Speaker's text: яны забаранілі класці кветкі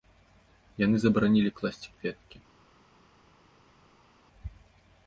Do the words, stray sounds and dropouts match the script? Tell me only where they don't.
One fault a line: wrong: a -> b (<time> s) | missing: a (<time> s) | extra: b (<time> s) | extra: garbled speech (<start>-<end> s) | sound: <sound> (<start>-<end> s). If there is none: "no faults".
no faults